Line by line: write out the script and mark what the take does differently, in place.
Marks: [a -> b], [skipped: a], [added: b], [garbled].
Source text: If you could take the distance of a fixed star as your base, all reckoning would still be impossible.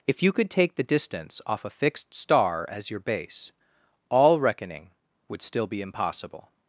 If you could take the distance [of -> off] a fixed star as your base, all reckoning would still be impossible.